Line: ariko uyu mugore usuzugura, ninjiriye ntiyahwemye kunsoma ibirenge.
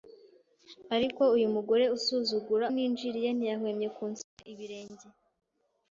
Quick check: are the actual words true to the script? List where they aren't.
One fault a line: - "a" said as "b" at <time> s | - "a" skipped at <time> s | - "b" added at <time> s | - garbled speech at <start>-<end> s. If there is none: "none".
none